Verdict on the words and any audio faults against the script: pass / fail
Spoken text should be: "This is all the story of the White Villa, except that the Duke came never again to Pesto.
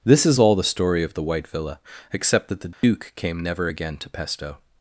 fail